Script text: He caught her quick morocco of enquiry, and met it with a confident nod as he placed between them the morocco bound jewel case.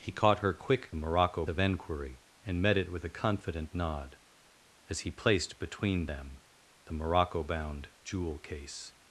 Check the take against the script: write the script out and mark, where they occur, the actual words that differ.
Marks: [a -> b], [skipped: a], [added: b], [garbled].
He caught her quick morocco of enquiry, and met it with a confident nod as he placed between them the morocco bound jewel case.